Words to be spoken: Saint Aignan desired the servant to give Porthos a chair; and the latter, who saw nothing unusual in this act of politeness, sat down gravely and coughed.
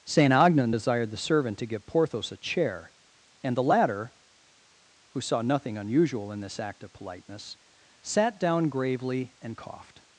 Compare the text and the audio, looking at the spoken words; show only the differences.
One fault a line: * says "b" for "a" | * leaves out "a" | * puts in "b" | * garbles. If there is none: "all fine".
all fine